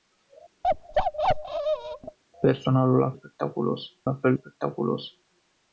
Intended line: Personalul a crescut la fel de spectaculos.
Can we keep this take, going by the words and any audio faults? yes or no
no